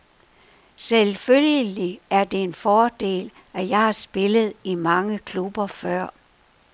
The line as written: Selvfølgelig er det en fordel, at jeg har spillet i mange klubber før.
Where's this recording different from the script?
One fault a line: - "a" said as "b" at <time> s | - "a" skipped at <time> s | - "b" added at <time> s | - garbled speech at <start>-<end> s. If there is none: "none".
none